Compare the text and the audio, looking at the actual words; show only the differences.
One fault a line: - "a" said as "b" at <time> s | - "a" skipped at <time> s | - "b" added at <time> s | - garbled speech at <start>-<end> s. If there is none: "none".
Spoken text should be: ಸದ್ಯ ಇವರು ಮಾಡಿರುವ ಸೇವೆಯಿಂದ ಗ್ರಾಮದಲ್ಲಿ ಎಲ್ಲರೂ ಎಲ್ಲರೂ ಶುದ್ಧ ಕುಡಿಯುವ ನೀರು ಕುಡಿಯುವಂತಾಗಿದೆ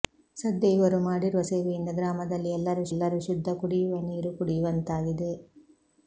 none